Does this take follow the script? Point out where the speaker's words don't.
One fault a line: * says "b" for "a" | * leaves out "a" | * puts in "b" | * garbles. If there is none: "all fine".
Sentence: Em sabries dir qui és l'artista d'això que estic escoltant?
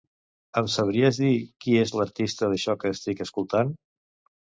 all fine